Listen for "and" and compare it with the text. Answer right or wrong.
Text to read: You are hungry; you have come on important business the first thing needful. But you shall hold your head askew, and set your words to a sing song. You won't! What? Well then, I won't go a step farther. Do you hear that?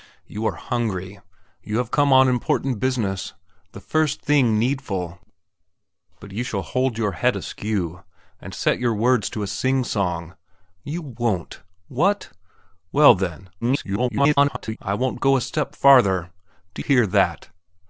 right